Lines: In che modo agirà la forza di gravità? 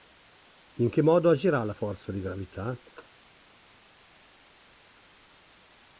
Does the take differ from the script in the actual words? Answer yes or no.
no